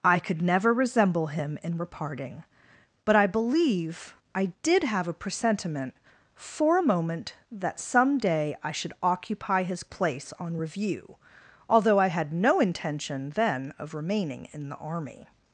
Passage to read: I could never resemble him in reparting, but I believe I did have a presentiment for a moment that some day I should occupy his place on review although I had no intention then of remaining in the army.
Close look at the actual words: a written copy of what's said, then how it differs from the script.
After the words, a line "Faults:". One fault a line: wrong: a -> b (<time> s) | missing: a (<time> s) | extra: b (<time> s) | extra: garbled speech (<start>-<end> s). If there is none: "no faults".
I could never resemble him in reparting, but I believe I did have a presentiment for a moment that some day I should occupy his place on review although I had no intention then of remaining in the army.
Faults:
no faults